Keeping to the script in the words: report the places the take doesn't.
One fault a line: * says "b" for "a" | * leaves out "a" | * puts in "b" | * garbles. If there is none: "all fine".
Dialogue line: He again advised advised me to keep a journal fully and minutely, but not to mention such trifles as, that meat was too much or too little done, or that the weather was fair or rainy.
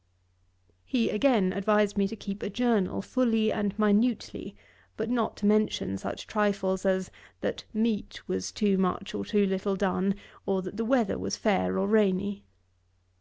* leaves out "advised"